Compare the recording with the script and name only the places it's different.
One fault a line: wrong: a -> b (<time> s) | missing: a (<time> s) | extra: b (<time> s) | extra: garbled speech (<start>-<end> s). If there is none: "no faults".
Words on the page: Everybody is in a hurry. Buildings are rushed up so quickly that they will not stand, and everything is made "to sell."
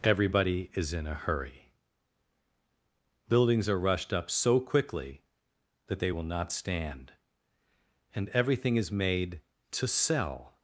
no faults